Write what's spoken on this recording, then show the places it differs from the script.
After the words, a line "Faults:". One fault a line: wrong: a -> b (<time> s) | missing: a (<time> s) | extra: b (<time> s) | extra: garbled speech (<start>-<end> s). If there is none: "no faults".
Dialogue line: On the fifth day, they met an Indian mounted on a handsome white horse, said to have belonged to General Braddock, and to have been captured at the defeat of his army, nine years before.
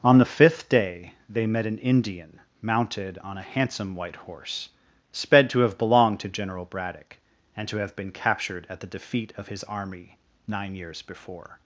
On the fifth day, they met an Indian mounted on a handsome white horse, sped to have belonged to General Braddock, and to have been captured at the defeat of his army, nine years before.
Faults:
wrong: said -> sped (5.1 s)